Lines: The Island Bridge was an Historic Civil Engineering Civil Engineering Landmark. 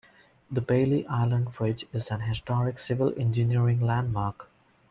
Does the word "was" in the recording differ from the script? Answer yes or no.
yes